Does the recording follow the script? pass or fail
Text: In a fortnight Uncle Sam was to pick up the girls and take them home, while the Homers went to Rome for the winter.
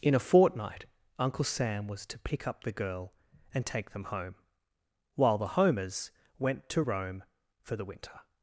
fail